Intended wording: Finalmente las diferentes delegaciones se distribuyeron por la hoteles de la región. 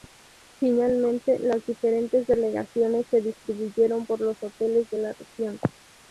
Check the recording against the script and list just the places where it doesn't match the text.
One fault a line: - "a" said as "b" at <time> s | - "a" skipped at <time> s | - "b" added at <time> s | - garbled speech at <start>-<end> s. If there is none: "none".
- "la" said as "los" at 4.2 s